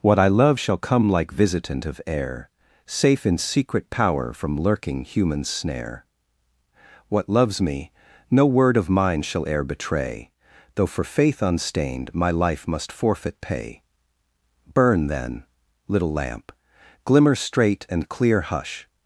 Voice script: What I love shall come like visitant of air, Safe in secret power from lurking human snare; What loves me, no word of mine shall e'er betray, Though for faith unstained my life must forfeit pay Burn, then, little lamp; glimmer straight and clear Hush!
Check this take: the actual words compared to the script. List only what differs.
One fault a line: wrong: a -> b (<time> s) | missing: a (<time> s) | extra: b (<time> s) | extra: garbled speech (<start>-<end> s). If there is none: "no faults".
no faults